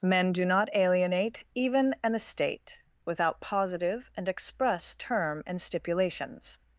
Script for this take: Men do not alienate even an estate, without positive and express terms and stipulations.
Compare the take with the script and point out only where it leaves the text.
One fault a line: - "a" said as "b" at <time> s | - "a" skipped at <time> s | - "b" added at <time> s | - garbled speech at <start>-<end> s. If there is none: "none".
- "terms" said as "term" at 5.0 s